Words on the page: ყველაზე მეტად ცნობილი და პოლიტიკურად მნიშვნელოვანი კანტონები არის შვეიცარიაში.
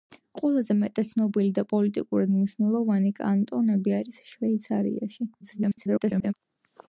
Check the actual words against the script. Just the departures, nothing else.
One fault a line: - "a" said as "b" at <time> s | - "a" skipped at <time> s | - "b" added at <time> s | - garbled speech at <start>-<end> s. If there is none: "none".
- garbled speech at 5.4-6.3 s